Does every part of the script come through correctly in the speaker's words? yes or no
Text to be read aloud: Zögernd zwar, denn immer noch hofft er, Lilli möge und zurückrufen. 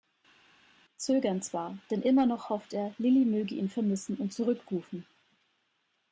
no